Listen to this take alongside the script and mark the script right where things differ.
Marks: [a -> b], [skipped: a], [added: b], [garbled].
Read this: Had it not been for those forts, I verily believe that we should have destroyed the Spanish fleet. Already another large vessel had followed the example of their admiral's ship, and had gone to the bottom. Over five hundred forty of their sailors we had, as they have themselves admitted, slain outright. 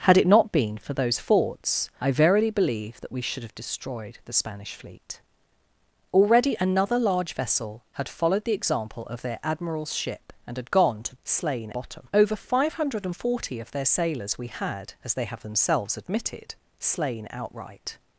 Had it not been for those forts, I verily believe that we should have destroyed the Spanish fleet. Already another large vessel had followed the example of their admiral's ship, and had gone to [the -> slain] bottom. Over five hundred forty of their sailors we had, as they have themselves admitted, slain outright.